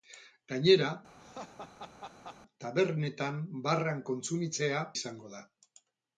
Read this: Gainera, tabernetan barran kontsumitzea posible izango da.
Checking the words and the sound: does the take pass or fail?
fail